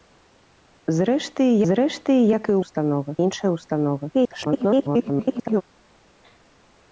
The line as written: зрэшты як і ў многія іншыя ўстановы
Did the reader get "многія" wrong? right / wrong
wrong